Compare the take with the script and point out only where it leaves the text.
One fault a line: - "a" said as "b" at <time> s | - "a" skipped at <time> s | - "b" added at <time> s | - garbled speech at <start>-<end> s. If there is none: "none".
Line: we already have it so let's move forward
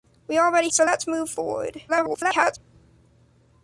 - "have it" skipped at 0.7 s
- garbled speech at 1.9-2.6 s